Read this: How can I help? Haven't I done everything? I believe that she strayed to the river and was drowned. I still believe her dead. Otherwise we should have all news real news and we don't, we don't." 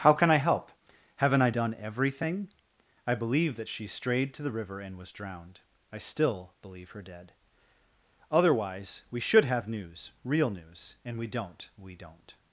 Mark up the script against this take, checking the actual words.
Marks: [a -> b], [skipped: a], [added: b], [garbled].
How can I help? Haven't I done everything? I believe that she strayed to the river and was drowned. I still believe her dead. Otherwise we should have [skipped: all] news real news and we don't, we don't."